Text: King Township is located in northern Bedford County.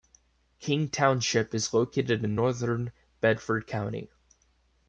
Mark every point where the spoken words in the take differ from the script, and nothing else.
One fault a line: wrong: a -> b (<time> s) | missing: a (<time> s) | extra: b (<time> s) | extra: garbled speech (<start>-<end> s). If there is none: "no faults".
no faults